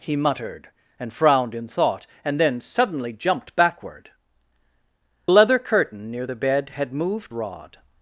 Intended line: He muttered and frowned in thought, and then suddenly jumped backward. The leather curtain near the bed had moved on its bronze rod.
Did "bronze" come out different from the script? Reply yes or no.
yes